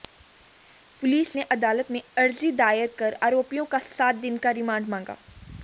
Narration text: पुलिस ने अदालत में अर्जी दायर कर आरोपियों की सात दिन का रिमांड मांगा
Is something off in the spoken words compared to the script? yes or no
yes